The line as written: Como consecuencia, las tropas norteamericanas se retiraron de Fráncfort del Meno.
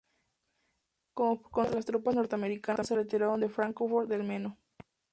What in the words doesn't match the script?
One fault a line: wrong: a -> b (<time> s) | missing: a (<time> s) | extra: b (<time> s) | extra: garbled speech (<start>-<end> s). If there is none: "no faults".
no faults